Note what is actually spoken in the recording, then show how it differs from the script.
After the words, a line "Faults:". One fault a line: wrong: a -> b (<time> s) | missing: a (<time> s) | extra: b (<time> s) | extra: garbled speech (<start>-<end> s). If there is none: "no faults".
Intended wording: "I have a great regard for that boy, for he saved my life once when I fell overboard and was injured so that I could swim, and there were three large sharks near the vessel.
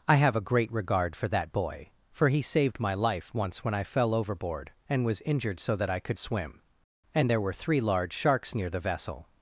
"I have a great regard for that boy, for he saved my life once when I fell overboard and was injured so that I could swim, and there were three large sharks near the vessel.
Faults:
no faults